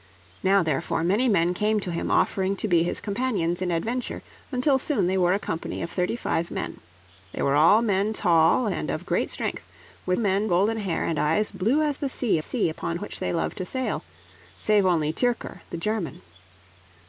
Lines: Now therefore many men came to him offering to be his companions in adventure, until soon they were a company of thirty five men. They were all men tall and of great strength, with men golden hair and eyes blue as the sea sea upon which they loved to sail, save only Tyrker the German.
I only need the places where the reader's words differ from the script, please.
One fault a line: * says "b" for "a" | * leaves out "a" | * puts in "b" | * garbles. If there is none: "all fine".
all fine